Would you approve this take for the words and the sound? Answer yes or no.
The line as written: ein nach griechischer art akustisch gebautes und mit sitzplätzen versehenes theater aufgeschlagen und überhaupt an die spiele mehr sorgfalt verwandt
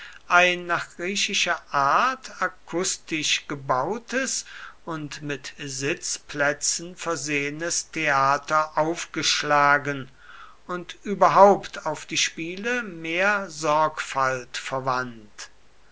no